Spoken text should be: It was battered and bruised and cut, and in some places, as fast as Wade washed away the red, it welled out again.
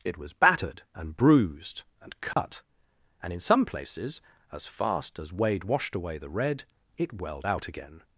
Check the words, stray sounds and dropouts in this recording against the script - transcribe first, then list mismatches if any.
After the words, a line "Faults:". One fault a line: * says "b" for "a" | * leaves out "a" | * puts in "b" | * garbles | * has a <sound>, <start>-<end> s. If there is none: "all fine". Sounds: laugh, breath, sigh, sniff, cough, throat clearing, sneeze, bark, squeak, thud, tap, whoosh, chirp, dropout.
It was battered and bruised and cut, and in some places, as fast as Wade washed away the red, it welled out again.
Faults:
* has a dropout, 2.3-2.4 s